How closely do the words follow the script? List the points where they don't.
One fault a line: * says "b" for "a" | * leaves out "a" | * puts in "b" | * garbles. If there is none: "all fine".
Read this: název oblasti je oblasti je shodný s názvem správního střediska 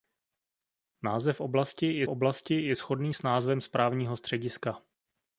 all fine